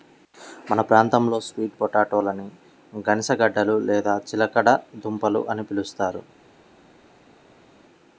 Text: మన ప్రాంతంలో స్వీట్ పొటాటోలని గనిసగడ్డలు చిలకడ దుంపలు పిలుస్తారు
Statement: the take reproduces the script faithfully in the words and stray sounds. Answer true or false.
false